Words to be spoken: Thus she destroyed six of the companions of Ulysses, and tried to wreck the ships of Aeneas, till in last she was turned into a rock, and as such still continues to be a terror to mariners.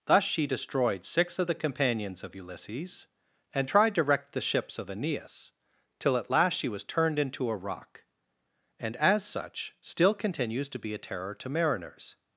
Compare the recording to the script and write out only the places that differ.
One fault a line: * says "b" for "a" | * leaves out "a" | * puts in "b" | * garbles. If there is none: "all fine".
* says "at" for "in"